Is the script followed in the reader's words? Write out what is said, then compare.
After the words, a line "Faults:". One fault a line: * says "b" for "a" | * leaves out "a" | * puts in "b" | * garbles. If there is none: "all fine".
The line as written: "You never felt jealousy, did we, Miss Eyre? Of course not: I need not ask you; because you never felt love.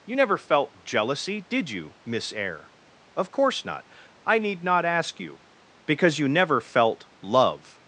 "You never felt jealousy, did you, Miss Eyre? Of course not: I need not ask you; because you never felt love.
Faults:
* says "you" for "we"